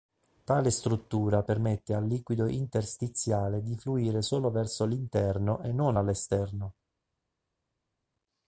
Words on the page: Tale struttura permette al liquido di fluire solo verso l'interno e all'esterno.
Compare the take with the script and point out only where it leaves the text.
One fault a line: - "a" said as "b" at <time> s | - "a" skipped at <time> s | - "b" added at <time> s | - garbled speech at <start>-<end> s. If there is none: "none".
- "interstiziale" added at 2.5 s
- "non" added at 5.7 s